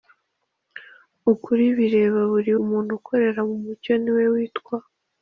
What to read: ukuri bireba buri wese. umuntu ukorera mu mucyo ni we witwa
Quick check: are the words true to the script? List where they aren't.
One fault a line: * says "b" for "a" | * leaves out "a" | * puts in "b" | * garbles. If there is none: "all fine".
* leaves out "wese"